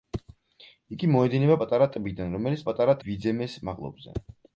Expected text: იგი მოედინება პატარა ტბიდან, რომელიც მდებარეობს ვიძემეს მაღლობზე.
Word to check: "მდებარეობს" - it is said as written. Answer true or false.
false